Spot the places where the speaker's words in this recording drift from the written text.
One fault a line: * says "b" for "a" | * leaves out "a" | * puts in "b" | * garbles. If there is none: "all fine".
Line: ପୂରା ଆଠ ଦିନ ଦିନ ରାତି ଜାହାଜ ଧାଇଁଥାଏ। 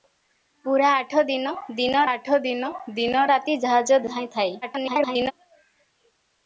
* puts in "ଆଠ ଦିନ ଦିନ"
* garbles